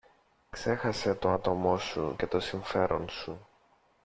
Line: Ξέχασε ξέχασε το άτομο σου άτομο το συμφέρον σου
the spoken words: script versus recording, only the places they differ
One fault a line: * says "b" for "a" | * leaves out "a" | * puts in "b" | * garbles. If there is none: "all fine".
* leaves out "ξέχασε"
* says "και" for "άτομο"